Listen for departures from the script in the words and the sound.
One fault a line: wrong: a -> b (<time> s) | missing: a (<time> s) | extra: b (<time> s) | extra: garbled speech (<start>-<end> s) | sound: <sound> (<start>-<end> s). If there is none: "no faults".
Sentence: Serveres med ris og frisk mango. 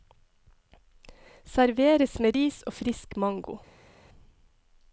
no faults